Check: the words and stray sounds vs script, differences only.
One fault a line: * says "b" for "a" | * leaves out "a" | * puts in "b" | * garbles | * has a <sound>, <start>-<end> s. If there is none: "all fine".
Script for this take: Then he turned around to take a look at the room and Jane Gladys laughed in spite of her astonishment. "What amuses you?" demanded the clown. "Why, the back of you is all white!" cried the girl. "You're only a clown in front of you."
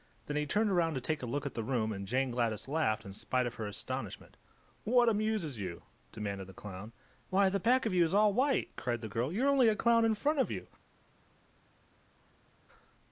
all fine